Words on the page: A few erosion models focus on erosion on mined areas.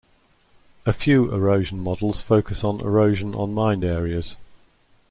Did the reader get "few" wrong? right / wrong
right